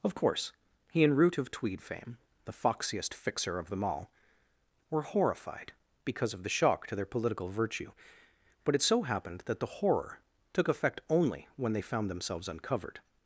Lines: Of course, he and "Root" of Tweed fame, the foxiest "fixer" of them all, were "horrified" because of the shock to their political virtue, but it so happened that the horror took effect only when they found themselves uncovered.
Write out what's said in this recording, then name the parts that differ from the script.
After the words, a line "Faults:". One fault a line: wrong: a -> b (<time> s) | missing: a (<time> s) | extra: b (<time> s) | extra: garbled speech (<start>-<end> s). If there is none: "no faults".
Of course, he and "Root" of Tweed fame, the foxiest "fixer" of them all, were "horrified" because of the shock to their political virtue, but it so happened that the horror took effect only when they found themselves uncovered.
Faults:
no faults